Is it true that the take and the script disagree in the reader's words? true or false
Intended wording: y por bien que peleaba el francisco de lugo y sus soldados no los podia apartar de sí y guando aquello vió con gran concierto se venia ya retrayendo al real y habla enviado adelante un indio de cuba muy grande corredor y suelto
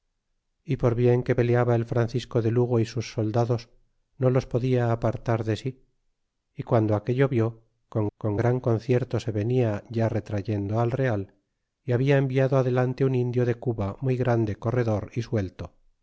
true